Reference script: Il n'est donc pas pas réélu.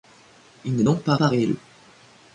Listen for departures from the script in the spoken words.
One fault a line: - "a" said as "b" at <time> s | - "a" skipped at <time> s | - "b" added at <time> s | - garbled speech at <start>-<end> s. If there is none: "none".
none